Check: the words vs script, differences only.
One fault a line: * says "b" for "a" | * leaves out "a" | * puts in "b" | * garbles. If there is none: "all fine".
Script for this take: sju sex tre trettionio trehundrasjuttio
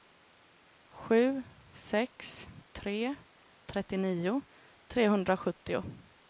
all fine